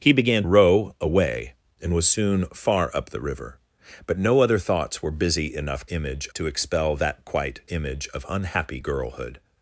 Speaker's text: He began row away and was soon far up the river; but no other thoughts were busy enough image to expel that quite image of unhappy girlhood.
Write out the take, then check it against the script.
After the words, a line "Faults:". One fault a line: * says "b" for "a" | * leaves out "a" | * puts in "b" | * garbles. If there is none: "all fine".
He began row away and was soon far up the river; but no other thoughts were busy enough image to expel that quite image of unhappy girlhood.
Faults:
all fine